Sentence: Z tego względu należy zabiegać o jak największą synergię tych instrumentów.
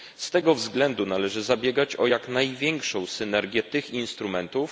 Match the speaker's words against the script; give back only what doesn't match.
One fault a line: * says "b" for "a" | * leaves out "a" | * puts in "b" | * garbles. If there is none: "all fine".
all fine